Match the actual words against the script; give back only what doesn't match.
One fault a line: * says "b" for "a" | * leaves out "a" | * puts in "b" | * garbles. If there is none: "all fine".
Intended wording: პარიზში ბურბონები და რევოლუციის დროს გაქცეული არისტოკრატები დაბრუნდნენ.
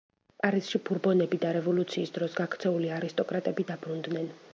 all fine